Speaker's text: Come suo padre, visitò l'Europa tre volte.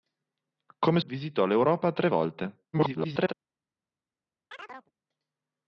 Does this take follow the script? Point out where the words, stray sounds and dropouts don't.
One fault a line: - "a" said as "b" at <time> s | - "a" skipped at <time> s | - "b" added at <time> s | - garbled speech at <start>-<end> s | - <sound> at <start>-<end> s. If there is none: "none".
- "suo padre" skipped at 1.0 s
- garbled speech at 2.7-3.3 s
- chirp at 4.5-4.9 s